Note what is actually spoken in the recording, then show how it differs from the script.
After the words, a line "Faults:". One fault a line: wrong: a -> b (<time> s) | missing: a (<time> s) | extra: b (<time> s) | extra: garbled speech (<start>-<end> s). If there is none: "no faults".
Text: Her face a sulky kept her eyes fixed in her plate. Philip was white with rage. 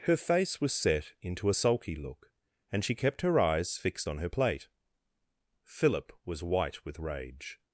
Her face was set into a sulky look, and she kept her eyes fixed on her plate. Philip was white with rage.
Faults:
extra: was set into (0.6 s)
extra: look and she (2.0 s)
wrong: in -> on (4.1 s)